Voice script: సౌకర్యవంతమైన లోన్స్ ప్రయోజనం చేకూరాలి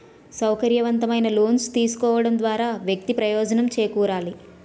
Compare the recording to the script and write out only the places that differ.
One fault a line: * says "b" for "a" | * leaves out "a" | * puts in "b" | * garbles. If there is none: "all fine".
* puts in "తీసుకోవడం ద్వారా వ్యక్తి"